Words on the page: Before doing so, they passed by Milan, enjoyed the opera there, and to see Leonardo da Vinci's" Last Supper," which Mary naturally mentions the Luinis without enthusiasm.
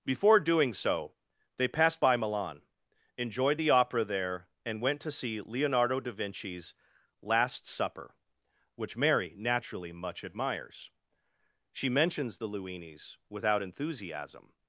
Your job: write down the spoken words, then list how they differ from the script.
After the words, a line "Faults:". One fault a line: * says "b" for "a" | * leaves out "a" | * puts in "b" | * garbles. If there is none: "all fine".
Before doing so, they passed by Milan, enjoyed the opera there, and went to see Leonardo da Vinci's" Last Supper," which Mary naturally much admires; she mentions the Luinis without enthusiasm.
Faults:
* puts in "went"
* puts in "much admires she"